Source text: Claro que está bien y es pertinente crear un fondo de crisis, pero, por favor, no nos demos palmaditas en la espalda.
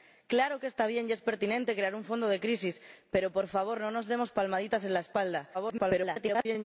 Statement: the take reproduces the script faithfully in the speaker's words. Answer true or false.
false